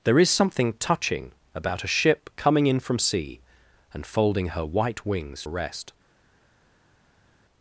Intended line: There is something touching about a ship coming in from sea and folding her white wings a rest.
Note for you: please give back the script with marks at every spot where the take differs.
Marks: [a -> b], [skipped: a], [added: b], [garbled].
There is something touching about a ship coming in from sea and folding her white wings a rest.